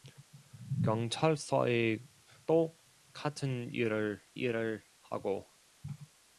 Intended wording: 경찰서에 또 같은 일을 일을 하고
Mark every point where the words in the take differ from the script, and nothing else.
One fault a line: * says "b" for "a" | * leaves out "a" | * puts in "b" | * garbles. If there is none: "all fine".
all fine